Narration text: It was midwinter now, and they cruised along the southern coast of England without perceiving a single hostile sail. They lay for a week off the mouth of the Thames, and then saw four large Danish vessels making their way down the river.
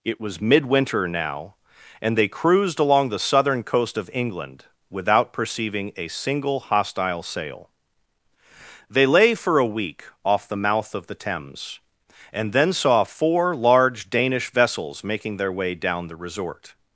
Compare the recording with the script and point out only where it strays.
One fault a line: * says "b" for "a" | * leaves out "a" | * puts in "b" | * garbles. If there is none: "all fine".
* says "resort" for "river"